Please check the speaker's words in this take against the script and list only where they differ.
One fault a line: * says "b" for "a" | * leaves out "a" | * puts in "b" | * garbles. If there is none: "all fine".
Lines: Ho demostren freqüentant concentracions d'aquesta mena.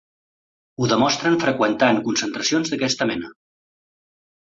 all fine